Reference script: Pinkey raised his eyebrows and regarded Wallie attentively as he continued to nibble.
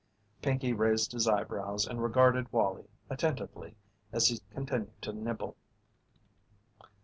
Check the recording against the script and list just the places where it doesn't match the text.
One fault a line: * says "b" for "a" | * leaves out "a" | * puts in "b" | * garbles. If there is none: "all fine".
all fine